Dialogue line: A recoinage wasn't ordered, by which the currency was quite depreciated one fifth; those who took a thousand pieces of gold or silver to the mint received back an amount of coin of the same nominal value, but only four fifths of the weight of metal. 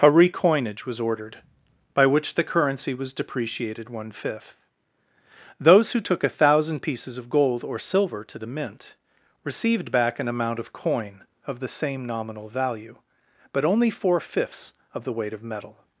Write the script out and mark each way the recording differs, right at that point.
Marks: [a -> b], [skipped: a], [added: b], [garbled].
A recoinage [wasn't -> was] ordered, by which the currency was [skipped: quite] depreciated one fifth; those who took a thousand pieces of gold or silver to the mint received back an amount of coin of the same nominal value, but only four fifths of the weight of metal.